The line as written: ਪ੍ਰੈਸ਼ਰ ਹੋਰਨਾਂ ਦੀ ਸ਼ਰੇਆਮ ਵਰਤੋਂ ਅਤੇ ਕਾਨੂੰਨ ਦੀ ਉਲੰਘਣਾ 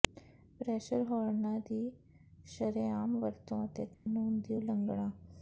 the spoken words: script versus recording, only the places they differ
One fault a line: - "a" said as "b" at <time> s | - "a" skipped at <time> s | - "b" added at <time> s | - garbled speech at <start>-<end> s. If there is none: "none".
none